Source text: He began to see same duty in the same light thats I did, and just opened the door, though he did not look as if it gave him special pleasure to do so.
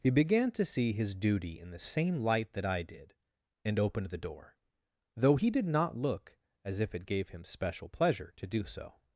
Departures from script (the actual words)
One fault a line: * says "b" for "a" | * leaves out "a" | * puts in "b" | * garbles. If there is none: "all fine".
* says "his" for "same"
* says "that" for "thats"
* leaves out "just"